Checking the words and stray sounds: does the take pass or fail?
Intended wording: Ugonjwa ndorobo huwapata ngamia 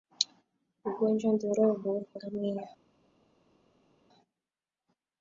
fail